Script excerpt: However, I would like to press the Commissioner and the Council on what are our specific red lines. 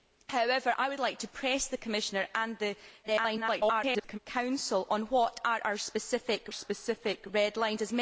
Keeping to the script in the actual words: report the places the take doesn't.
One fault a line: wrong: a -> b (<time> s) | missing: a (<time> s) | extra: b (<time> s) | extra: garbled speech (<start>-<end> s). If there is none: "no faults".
extra: garbled speech (3.0-4.2 s)
extra: specific (6.5 s)